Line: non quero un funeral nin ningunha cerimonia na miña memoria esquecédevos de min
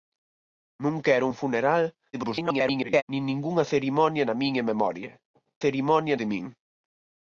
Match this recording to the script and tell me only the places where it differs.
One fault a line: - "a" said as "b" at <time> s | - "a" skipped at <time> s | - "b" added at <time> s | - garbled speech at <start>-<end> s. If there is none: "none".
- garbled speech at 2.1-3.0 s
- "esquecédevos" said as "cerimonia" at 5.6 s